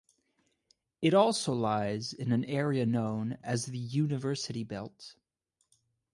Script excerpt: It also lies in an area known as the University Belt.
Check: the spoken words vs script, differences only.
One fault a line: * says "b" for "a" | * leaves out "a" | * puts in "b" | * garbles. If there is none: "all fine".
all fine